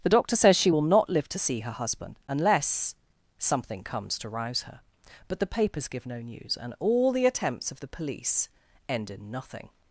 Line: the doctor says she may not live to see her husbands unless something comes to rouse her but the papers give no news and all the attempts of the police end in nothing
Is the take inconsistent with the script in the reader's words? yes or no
yes